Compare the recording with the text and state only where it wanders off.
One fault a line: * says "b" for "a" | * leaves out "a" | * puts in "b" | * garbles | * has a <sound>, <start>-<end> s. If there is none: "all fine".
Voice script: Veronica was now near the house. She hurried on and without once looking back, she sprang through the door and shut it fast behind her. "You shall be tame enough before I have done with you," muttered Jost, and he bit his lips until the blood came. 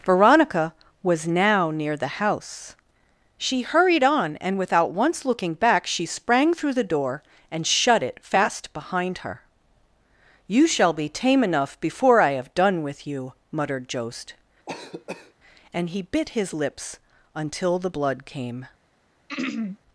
* has a cough, 14.7-15.3 s
* has a throat clearing, 19.3-19.8 s